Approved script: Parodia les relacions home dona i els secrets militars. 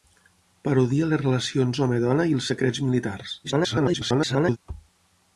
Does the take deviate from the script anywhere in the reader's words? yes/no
yes